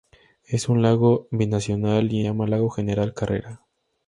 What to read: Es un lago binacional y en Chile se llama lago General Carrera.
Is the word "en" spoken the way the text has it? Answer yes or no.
no